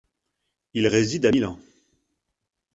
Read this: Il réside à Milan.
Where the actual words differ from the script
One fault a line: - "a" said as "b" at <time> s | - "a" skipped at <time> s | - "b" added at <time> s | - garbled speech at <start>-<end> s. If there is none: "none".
none